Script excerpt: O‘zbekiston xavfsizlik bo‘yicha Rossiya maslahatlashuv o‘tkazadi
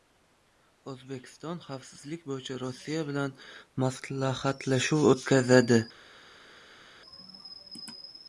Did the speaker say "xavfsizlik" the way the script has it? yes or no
yes